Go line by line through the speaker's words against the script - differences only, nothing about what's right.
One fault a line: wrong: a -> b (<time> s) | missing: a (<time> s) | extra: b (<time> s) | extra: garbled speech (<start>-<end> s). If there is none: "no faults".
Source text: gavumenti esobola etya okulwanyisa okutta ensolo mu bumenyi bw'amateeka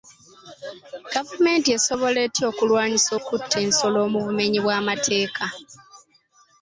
no faults